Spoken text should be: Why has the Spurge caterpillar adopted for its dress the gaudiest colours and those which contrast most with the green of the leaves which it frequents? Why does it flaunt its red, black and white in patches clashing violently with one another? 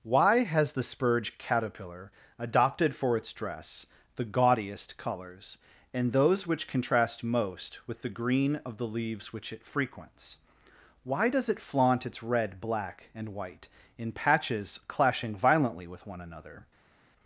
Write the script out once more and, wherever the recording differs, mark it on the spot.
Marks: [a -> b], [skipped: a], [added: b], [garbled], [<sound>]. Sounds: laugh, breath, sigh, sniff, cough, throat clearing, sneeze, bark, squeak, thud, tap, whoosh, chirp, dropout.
Why has the Spurge caterpillar adopted for its dress the gaudiest colours and those which contrast most with the green of the leaves which it frequents? Why does it flaunt its red, black and white in patches clashing violently with one another?